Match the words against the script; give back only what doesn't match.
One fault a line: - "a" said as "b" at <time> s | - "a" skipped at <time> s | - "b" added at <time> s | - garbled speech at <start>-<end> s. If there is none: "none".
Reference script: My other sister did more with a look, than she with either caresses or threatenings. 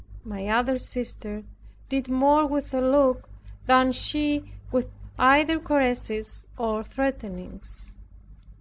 none